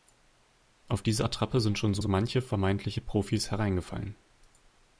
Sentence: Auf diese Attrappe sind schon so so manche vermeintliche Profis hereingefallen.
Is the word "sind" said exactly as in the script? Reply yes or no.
yes